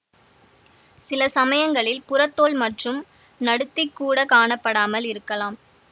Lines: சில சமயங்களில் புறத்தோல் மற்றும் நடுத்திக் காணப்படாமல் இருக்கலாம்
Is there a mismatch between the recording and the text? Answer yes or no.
yes